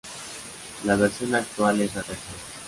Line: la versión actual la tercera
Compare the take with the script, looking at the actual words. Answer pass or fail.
fail